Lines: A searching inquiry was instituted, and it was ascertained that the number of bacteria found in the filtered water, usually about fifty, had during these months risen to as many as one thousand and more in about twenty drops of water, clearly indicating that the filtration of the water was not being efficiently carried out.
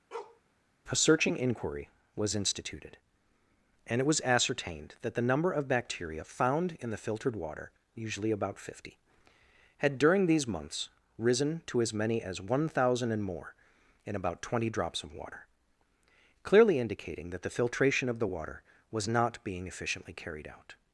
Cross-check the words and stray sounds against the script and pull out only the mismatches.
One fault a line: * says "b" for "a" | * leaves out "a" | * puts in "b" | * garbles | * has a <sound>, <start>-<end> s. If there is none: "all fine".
* has a bark, 0.1-0.4 s